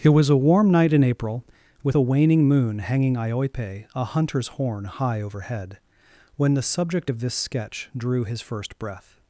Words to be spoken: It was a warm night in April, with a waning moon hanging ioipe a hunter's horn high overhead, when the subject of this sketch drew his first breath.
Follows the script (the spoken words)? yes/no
yes